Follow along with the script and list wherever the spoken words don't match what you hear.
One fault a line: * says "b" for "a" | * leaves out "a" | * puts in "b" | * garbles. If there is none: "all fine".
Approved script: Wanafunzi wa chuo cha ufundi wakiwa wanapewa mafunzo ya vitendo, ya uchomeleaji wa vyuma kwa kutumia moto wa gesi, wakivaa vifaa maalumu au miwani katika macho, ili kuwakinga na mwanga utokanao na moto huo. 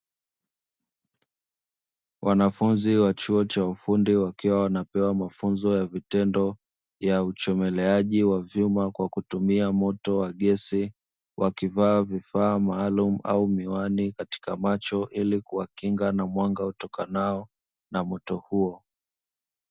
all fine